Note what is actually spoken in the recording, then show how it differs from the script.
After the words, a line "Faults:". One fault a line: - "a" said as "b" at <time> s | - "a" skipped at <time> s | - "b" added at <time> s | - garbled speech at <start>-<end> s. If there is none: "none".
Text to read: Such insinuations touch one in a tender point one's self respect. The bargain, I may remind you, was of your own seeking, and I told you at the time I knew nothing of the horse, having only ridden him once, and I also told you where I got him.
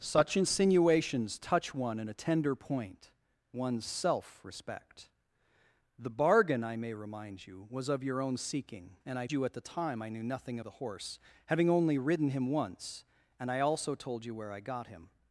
Such insinuations touch one in a tender point one's self respect. The bargain, I may remind you, was of your own seeking, and I you at the time I knew nothing the horse, having only ridden him once, and I also told you where I got him.
Faults:
- "told" skipped at 9.3 s
- "of" skipped at 10.6 s